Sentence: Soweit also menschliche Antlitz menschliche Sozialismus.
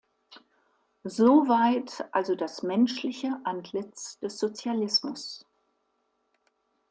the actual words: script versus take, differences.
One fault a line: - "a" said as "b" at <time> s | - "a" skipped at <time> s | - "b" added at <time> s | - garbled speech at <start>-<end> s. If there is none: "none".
- "das" added at 2.3 s
- "menschliche" said as "des" at 4.2 s